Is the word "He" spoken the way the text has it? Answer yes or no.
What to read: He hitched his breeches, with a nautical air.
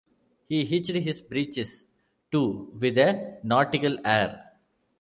yes